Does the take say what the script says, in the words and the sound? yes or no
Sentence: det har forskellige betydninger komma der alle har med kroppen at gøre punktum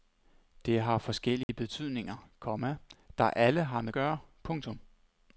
no